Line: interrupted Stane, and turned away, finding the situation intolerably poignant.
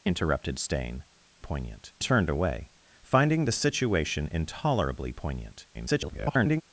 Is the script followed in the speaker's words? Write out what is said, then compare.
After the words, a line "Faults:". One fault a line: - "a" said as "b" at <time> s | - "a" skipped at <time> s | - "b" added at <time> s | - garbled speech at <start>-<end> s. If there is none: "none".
interrupted Stane, poignant turned away, finding the situation intolerably poignant. [garbled]
Faults:
- "and" said as "poignant" at 1.4 s
- garbled speech at 5.7-6.6 s